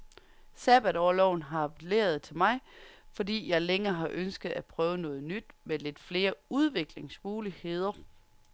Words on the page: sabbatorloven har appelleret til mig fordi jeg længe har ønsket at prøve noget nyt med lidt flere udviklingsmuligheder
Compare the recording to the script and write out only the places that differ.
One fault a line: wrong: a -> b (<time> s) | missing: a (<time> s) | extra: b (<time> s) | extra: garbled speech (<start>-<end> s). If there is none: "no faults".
no faults